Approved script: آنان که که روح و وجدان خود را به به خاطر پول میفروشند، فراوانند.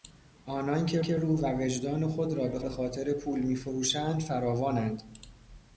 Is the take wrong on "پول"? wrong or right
right